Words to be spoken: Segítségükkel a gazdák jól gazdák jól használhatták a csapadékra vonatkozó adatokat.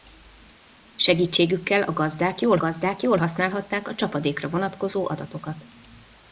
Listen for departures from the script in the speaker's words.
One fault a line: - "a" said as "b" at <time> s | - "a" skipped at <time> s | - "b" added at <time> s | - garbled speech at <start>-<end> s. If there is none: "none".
none